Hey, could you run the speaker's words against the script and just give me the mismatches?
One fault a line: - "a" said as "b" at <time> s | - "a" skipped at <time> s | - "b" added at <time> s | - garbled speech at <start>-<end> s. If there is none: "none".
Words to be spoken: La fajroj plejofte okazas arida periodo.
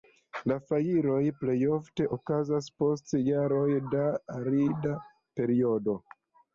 - "post jaroj da" added at 2.8 s